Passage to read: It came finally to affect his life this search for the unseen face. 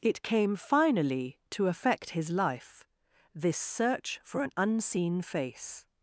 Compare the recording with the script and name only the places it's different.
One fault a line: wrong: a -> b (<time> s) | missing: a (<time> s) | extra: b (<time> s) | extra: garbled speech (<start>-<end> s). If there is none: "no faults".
wrong: the -> an (4.4 s)